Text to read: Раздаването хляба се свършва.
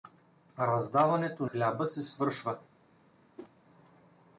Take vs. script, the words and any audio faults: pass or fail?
fail